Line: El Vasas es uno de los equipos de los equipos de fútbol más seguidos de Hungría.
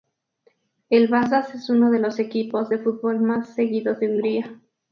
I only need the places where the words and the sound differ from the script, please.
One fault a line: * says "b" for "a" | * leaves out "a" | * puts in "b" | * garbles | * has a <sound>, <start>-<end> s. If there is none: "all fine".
* leaves out "los equipos de"